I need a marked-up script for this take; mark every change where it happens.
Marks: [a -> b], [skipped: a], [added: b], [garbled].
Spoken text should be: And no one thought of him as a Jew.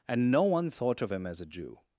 And no one thought of him as a Jew.